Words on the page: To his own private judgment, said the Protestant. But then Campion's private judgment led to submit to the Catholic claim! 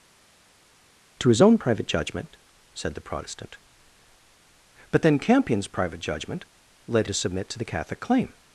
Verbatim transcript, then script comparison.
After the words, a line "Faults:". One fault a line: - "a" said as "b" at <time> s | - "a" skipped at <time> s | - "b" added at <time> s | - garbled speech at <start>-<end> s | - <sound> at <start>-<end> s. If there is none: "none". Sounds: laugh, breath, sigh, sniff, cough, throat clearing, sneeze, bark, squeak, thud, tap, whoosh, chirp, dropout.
To his own private judgment, said the Protestant. But then Campion's private judgment led to submit to the Catholic claim!
Faults:
none